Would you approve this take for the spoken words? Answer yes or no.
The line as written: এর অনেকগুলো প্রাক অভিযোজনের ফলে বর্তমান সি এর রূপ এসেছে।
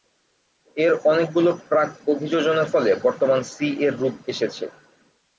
yes